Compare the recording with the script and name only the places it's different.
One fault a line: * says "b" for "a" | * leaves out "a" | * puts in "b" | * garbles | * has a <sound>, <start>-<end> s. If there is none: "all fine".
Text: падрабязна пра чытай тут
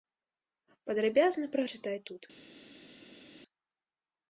all fine